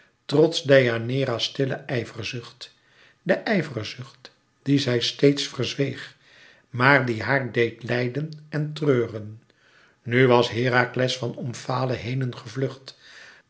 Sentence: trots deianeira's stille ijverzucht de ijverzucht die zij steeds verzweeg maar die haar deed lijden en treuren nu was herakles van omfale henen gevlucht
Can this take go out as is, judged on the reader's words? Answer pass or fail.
pass